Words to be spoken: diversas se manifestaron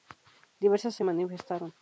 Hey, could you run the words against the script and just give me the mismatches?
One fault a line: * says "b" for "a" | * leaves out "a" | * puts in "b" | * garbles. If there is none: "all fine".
all fine